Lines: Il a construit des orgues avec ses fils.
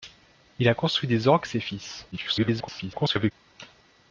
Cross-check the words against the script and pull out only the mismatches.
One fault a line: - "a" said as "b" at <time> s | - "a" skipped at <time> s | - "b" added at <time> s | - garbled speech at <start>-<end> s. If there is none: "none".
- "avec" skipped at 1.5 s
- garbled speech at 2.1-3.3 s